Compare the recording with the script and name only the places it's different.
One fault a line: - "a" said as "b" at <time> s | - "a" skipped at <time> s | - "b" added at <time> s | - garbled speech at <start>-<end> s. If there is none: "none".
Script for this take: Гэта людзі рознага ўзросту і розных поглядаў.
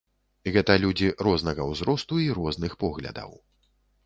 none